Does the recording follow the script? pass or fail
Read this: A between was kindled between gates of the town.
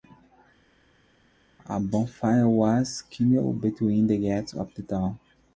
fail